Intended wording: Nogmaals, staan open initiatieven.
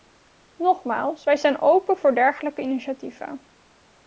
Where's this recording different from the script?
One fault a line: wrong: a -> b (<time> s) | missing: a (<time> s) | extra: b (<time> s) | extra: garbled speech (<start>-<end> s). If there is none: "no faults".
extra: wij (1.2 s)
extra: voor dergelijke (2.0 s)